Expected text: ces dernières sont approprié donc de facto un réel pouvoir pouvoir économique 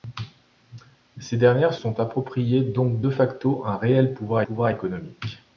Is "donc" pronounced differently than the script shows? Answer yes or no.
no